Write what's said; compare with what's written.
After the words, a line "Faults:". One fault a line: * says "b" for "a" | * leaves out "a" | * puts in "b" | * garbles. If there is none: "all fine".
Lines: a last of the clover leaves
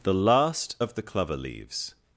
the last of the clover leaves
Faults:
* says "the" for "a"